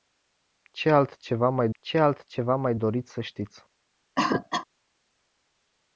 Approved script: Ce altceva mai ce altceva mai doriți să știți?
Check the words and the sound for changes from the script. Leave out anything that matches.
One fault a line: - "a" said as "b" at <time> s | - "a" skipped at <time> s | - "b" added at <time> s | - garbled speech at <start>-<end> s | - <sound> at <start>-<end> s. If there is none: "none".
- cough at 4.2-4.7 s